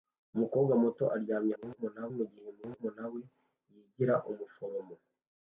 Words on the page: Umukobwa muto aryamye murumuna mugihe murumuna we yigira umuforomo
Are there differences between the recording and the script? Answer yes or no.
no